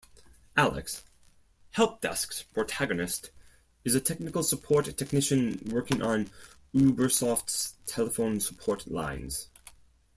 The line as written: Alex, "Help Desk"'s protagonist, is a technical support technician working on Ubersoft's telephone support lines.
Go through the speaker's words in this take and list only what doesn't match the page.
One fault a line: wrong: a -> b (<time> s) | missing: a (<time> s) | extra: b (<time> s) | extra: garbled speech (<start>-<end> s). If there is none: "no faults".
no faults